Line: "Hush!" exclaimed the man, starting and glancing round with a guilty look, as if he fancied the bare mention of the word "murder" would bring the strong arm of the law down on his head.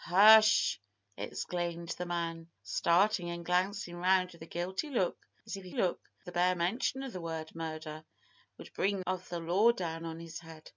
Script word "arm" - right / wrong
wrong